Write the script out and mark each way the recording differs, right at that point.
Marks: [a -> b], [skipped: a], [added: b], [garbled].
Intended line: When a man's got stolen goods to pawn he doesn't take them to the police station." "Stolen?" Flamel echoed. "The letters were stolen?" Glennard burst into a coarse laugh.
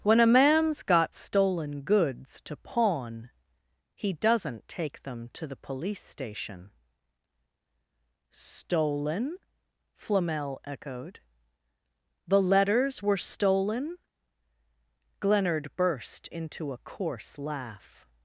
When a man's got stolen goods to pawn he doesn't take them to the police station." "Stolen?" Flamel echoed. "The letters were stolen?" Glennard burst into a coarse laugh.